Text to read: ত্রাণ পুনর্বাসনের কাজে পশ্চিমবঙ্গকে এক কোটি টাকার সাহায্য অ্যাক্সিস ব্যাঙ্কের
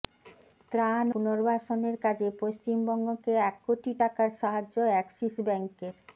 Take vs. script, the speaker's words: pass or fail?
pass